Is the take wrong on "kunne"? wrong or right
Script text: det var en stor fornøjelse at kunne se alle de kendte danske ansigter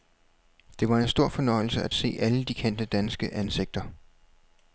wrong